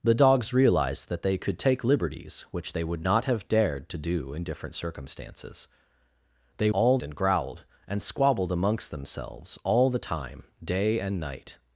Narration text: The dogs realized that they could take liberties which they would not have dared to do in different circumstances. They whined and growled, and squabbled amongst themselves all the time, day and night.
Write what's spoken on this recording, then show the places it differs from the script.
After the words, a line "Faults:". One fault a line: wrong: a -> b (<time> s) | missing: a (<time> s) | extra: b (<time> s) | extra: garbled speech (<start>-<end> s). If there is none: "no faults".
The dogs realized that they could take liberties which they would not have dared to do in different circumstances. They all and growled, and squabbled amongst themselves all the time, day and night.
Faults:
wrong: whined -> all (6.7 s)